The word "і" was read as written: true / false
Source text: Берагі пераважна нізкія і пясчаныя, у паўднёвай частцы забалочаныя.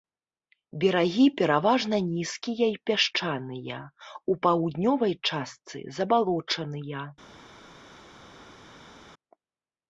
true